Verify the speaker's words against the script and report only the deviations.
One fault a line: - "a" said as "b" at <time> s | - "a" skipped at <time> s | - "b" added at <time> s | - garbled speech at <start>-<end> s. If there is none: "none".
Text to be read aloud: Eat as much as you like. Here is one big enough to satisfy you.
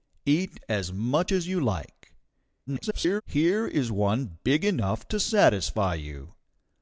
- garbled speech at 2.7-3.2 s